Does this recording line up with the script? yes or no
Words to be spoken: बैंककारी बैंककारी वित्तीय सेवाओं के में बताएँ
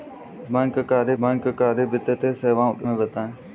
yes